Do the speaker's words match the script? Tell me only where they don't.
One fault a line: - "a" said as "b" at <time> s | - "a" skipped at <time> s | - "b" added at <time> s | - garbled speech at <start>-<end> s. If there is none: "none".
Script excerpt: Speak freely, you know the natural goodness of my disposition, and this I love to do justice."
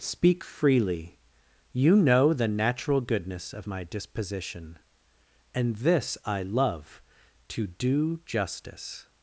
none